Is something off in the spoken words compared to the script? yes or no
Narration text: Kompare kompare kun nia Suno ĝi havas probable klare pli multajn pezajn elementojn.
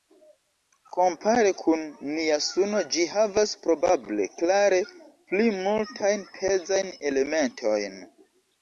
yes